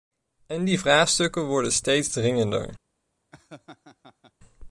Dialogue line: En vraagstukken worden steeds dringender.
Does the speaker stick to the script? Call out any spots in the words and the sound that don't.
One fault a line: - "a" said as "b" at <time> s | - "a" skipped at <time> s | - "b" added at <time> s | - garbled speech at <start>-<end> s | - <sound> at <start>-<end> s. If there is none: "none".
- "die" added at 0.6 s
- laugh at 3.3-4.3 s